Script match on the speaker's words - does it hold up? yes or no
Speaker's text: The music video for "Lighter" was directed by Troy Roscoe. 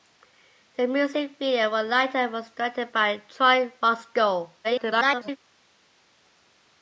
no